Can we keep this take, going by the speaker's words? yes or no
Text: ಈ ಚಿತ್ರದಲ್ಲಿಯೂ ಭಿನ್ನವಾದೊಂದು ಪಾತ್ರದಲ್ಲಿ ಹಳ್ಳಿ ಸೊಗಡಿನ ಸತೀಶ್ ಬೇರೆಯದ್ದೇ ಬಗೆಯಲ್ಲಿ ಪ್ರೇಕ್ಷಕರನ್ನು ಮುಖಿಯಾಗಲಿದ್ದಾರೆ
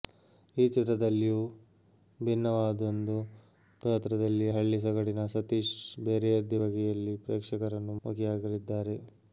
yes